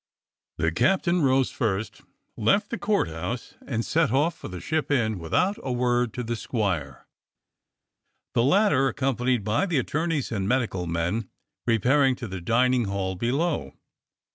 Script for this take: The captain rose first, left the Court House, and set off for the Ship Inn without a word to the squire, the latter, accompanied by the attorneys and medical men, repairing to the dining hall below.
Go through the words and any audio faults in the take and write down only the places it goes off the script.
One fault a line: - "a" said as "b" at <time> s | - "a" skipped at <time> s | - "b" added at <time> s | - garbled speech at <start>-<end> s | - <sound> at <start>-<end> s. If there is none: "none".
none